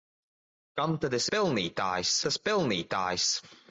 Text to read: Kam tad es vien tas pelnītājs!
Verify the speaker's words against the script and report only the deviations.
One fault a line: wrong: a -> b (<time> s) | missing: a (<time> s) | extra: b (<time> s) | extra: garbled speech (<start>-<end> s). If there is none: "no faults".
wrong: vien -> pelnītājs (1.4 s)